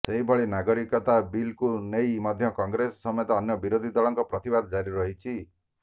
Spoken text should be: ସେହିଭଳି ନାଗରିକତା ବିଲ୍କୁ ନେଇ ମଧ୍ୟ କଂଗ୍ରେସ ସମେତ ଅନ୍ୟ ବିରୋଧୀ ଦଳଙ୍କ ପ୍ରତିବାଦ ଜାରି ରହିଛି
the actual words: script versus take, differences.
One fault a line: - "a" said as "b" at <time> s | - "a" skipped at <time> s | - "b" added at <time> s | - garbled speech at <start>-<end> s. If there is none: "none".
none